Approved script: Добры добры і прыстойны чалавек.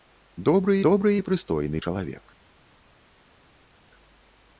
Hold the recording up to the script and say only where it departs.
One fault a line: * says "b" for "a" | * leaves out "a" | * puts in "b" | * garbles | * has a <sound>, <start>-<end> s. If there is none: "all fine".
all fine